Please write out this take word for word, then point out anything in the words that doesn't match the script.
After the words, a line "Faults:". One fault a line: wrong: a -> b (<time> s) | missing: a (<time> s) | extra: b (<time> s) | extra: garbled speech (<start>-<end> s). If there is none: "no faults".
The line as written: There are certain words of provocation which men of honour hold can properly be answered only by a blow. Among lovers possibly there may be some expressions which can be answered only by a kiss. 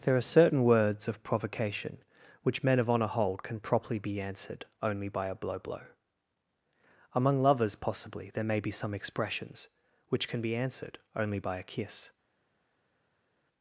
There are certain words of provocation which men of honour hold can properly be answered only by a blow blow. Among lovers possibly there may be some expressions which can be answered only by a kiss.
Faults:
extra: blow (5.6 s)